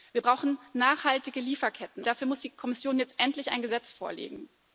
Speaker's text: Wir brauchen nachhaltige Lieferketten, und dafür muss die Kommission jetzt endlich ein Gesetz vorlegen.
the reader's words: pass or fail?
fail